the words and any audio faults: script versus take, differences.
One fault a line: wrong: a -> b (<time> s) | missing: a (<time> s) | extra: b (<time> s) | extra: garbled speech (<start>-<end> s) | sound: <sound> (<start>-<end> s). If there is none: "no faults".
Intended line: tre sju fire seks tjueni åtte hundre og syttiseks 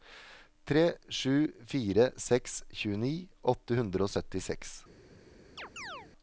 sound: chirp (5.6-6.1 s)